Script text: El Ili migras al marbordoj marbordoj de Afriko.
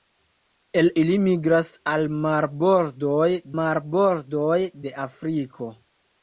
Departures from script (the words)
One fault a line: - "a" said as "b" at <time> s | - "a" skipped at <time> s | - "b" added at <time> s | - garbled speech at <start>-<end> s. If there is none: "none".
none